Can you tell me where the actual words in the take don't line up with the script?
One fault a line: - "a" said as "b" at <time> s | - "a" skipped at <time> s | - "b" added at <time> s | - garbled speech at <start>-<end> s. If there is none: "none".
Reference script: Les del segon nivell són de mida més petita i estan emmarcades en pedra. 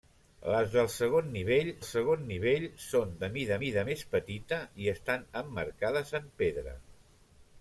- "segon nivell" added at 1.9 s
- "mida" added at 3.6 s